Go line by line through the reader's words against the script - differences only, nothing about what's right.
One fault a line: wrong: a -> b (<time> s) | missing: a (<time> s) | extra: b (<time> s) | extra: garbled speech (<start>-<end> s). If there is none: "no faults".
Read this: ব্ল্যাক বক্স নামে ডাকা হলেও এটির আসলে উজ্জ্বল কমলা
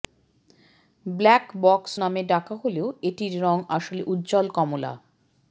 extra: রং (3.4 s)